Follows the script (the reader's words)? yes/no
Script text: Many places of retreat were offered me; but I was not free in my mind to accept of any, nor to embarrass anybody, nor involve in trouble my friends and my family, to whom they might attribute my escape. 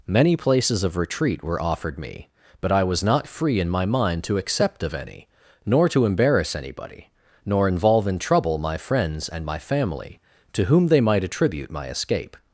yes